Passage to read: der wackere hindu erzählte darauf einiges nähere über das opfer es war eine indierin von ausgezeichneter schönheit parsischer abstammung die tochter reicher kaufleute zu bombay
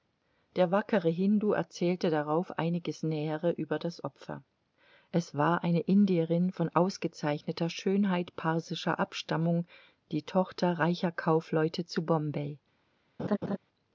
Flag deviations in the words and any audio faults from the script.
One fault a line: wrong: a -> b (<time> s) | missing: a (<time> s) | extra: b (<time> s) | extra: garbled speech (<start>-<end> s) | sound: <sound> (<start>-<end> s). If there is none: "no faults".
sound: laugh (13.2-13.6 s)